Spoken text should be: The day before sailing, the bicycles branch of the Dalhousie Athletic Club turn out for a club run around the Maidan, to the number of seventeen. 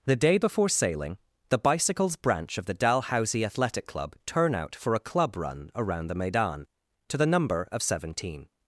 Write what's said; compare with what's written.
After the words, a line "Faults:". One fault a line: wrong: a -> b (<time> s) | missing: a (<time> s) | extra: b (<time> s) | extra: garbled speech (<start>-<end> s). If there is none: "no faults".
The day before sailing, the bicycles branch of the Dalhousie Athletic Club turn out for a club run around the Maidan, to the number of seventeen.
Faults:
no faults